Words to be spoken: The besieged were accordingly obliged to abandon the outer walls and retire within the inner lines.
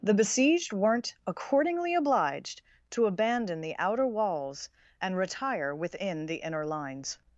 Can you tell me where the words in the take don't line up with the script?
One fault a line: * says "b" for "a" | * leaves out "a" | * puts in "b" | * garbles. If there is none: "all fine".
* says "weren't" for "were"